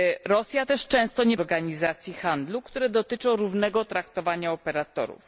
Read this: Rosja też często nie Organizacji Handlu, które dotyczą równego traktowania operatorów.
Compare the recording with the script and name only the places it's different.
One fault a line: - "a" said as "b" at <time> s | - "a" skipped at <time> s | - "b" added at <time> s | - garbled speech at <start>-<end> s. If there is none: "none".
none